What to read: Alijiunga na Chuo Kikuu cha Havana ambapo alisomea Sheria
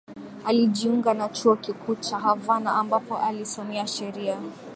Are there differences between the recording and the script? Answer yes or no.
no